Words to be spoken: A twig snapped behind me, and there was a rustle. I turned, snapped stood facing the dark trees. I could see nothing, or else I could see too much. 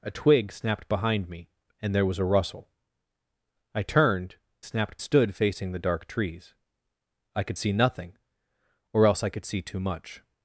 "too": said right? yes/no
yes